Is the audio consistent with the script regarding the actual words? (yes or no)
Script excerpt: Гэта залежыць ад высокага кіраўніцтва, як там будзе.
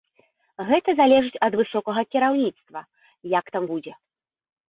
yes